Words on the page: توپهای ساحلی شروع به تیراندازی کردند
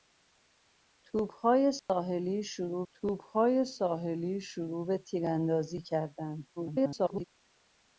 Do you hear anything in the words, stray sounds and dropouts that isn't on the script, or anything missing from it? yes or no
yes